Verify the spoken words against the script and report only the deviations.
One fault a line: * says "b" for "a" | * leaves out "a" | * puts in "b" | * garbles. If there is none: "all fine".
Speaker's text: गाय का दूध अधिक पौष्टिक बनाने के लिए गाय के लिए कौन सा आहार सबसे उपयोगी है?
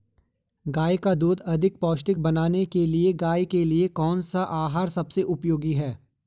all fine